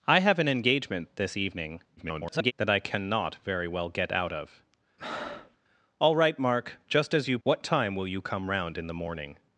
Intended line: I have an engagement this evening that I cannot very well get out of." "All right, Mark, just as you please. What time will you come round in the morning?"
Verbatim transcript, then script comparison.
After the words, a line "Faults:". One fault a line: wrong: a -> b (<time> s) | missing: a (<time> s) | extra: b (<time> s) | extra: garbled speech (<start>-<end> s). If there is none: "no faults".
I have an engagement this evening [garbled] that I cannot very well get out of." "All right, Mark, just as you. What time will you come round in the morning?"
Faults:
extra: garbled speech (2.0-2.5 s)
missing: please (7.4 s)